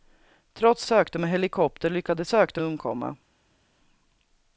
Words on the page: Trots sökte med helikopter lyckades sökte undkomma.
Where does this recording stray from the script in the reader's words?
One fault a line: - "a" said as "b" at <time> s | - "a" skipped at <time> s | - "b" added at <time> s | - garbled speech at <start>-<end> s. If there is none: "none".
none